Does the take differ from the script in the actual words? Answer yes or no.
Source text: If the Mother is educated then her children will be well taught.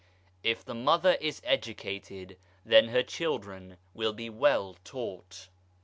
no